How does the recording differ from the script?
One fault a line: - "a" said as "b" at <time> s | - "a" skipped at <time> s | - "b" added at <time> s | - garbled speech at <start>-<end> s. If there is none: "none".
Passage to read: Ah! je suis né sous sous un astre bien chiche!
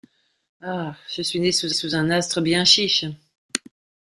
none